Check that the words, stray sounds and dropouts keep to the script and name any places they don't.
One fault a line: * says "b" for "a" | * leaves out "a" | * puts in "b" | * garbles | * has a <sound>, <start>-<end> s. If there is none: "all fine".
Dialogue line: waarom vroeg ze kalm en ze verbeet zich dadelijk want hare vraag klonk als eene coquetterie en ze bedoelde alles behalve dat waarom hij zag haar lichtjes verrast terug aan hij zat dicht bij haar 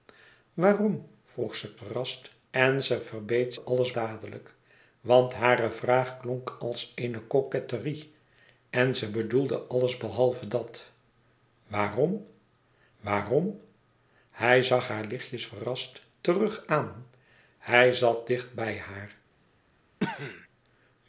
* says "verrast" for "kalm"
* says "alles" for "zich"
* puts in "waarom"
* has a cough, 20.0-20.5 s